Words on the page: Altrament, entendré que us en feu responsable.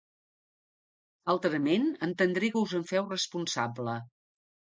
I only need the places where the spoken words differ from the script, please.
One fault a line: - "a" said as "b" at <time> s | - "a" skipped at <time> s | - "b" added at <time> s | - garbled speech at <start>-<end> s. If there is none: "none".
none